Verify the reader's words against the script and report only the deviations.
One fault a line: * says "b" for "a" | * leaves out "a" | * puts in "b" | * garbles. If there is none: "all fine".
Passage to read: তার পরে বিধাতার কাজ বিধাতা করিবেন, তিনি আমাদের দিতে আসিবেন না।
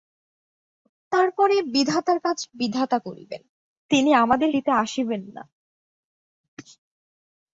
all fine